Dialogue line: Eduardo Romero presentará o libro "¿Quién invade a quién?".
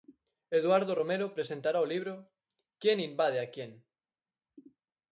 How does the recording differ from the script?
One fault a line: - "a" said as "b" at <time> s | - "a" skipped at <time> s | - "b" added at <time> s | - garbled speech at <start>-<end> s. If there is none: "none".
none